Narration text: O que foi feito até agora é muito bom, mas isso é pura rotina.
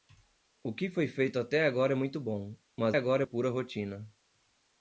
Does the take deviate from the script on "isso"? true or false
true